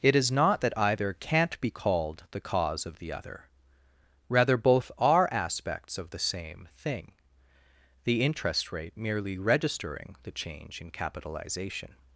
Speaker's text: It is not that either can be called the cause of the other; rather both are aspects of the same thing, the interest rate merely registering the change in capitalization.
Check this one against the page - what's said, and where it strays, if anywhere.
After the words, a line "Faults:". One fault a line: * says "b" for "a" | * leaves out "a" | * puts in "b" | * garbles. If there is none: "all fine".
It is not that either can't be called the cause of the other; rather both are aspects of the same thing, the interest rate merely registering the change in capitalization.
Faults:
* says "can't" for "can"